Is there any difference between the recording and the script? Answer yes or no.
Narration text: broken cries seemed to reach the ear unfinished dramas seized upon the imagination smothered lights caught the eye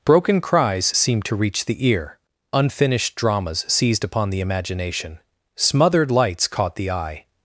no